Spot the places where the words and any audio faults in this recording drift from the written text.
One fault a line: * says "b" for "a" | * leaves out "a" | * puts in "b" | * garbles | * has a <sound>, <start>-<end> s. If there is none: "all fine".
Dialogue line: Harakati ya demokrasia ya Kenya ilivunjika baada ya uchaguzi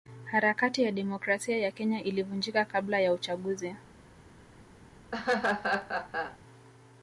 * says "kabla" for "baada"
* has a laugh, 5.1-6.4 s